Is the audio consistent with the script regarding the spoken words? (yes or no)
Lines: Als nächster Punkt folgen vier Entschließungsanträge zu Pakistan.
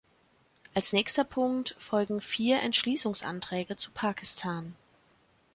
yes